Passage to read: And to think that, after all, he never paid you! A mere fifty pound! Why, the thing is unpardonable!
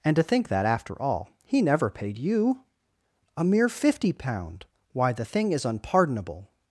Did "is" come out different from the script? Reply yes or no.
no